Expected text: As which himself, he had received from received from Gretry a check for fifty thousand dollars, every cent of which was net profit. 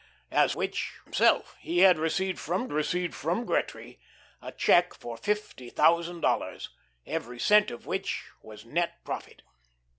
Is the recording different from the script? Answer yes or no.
no